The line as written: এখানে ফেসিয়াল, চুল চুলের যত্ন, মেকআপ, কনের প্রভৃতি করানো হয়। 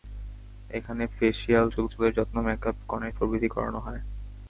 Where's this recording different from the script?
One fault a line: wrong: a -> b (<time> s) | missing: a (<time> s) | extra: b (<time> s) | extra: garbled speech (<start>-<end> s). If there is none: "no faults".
no faults